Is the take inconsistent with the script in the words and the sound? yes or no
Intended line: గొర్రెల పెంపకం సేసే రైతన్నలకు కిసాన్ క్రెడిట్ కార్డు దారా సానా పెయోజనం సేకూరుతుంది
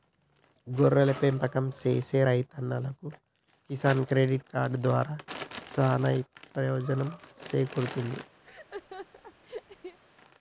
yes